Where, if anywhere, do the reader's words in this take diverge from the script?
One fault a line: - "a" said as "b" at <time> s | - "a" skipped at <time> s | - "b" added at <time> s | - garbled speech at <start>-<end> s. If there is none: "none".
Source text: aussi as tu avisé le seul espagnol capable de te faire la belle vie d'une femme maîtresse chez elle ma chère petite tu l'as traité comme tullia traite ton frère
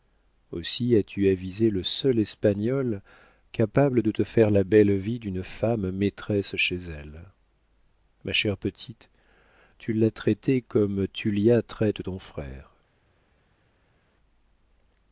none